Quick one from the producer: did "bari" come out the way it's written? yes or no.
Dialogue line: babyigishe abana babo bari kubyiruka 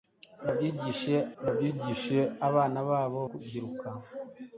no